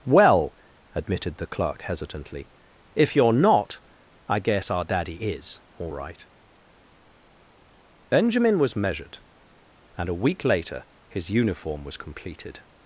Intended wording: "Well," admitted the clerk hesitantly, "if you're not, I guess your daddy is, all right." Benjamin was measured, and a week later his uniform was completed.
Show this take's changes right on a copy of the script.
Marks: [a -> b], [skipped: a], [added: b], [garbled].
"Well," admitted the clerk hesitantly, "if you're not, I guess [your -> our] daddy is, all right." Benjamin was measured, and a week later his uniform was completed.